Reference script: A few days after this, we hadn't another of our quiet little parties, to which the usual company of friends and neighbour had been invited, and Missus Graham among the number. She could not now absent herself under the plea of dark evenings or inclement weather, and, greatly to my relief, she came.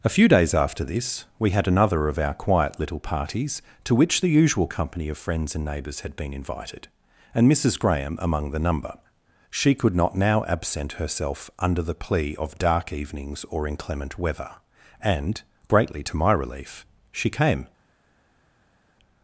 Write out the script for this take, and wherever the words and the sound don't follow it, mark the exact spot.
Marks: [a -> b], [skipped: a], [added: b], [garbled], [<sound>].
A few days after this, we [hadn't -> had] another of our quiet little parties, to which the usual company of friends and [neighbour -> neighbours] had been invited, and Missus Graham among the number. She could not now absent herself under the plea of dark evenings or inclement weather, and, greatly to my relief, she came.